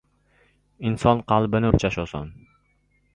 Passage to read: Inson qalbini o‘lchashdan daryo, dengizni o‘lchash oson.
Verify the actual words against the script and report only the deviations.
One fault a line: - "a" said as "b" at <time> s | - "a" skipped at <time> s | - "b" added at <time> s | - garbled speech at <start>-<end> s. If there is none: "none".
- "o‘lchashdan daryo dengizni" skipped at 1.7 s